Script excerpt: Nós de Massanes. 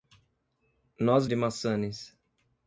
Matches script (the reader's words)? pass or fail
pass